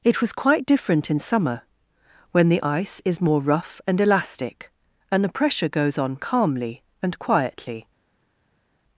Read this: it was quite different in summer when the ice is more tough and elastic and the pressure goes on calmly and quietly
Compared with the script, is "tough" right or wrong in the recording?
wrong